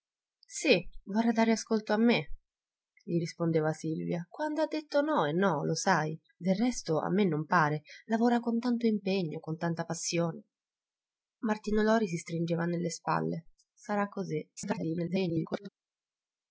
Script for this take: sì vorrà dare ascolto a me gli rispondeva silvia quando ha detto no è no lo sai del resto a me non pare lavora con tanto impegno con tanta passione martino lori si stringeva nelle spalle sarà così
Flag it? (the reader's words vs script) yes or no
yes